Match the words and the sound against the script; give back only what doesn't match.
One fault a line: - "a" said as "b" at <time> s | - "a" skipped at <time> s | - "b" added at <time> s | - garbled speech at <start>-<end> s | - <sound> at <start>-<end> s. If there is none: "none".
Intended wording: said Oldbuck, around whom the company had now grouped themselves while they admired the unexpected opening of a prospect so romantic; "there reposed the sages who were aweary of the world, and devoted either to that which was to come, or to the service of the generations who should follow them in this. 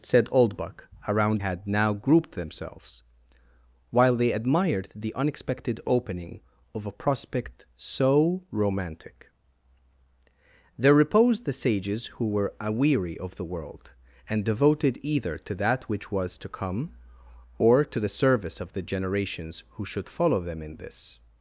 - "whom the company" skipped at 1.4 s